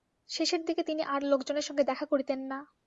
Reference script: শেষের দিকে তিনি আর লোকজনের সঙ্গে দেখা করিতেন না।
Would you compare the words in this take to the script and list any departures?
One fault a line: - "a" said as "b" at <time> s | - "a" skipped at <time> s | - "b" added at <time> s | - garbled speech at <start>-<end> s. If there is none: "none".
none